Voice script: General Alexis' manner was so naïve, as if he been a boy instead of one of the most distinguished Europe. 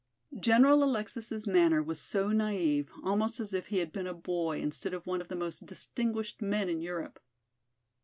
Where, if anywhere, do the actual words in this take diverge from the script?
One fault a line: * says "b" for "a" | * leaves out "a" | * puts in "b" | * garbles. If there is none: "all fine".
* puts in "almost"
* puts in "had"
* puts in "men in"